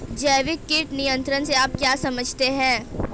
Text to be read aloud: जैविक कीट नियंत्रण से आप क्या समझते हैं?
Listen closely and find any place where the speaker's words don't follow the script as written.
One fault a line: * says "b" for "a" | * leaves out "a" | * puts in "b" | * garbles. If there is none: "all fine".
all fine